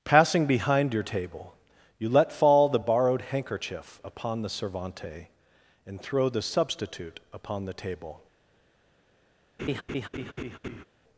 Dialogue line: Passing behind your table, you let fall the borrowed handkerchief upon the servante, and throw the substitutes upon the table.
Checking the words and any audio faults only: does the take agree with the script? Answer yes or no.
no